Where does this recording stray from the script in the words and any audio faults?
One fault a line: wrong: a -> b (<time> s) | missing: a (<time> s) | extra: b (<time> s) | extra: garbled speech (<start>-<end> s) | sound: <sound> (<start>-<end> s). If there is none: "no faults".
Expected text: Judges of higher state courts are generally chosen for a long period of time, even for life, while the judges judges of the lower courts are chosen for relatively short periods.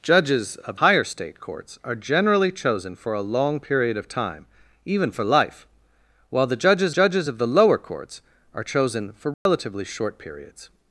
sound: dropout (9.3-9.5 s)